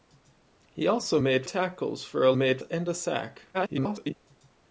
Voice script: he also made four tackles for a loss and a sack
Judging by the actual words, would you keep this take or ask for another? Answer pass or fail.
fail